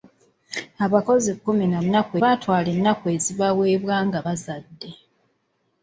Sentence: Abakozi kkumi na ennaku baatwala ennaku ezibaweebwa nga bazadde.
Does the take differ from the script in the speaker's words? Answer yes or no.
no